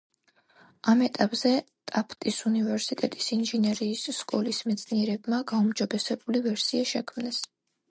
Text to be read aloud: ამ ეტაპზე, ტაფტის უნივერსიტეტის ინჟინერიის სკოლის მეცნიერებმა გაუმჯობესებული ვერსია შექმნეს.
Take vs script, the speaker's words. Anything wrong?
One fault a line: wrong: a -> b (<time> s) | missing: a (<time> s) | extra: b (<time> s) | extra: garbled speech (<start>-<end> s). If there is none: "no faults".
no faults